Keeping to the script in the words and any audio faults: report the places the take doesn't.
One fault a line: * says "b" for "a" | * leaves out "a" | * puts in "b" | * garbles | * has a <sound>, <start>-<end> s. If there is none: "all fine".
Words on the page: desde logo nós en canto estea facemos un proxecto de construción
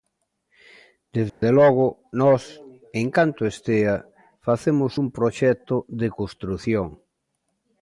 * has a dropout, 1.3-1.4 s